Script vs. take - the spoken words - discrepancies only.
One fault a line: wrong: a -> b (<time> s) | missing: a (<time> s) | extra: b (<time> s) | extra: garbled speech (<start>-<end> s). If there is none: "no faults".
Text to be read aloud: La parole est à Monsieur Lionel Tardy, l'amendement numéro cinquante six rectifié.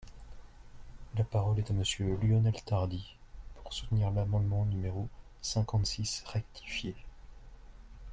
extra: pour soutenir (3.5 s)